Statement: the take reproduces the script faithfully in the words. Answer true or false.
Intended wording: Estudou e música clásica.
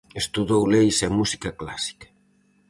false